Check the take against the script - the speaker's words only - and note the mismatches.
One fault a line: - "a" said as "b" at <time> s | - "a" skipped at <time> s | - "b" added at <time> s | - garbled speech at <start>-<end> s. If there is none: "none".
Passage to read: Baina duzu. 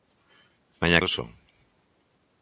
none